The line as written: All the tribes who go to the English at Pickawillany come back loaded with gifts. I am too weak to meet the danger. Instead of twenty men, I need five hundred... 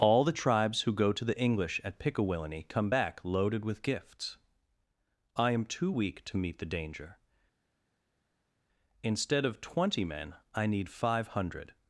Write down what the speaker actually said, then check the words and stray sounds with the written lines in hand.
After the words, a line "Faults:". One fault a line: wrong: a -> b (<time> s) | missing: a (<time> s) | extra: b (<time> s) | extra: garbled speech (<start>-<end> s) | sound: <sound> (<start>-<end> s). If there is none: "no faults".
All the tribes who go to the English at Pickawillany come back loaded with gifts. I am too weak to meet the danger. Instead of twenty men, I need five hundred...
Faults:
no faults